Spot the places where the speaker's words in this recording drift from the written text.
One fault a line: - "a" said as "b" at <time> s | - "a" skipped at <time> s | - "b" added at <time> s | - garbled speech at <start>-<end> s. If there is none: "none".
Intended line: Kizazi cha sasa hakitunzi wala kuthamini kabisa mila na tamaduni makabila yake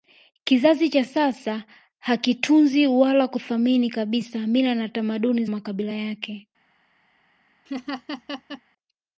none